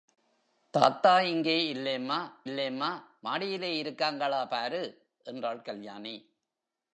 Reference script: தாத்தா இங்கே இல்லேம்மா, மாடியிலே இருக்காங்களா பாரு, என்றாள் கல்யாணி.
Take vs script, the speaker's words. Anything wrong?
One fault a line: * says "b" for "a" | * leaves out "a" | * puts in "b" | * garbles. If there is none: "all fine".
* puts in "இல்லேம்மா"